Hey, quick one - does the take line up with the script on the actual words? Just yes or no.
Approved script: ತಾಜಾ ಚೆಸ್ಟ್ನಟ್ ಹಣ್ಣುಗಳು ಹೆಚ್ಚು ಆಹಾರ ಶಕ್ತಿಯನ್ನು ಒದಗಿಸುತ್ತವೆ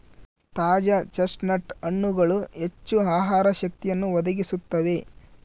yes